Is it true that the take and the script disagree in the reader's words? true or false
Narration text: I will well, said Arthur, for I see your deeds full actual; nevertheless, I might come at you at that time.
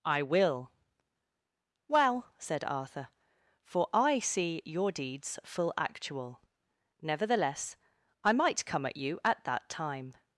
false